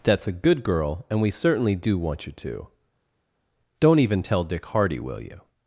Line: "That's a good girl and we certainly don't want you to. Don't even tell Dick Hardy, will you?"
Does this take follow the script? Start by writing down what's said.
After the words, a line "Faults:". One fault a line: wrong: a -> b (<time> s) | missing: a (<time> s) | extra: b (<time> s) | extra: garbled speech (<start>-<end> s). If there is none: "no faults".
"That's a good girl and we certainly do want you to. Don't even tell Dick Hardy, will you?"
Faults:
wrong: don't -> do (1.8 s)